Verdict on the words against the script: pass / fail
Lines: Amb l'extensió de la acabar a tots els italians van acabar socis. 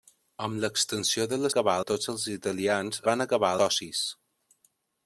pass